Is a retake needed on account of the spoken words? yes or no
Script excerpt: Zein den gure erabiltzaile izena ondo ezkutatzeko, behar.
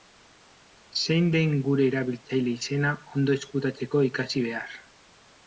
yes